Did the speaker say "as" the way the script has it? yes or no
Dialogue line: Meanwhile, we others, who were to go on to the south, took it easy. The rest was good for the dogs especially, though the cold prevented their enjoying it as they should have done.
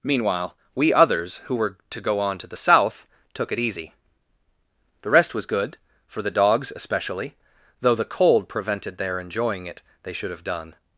no